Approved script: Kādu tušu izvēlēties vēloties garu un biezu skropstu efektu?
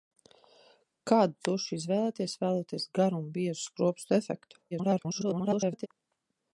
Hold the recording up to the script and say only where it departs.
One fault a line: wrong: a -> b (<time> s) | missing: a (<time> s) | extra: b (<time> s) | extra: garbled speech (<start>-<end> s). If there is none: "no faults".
extra: garbled speech (4.7-5.9 s)